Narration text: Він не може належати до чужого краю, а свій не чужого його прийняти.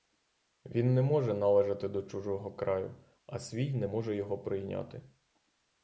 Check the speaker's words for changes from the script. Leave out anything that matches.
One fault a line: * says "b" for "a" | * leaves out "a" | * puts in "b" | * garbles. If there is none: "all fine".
* says "може" for "чужого"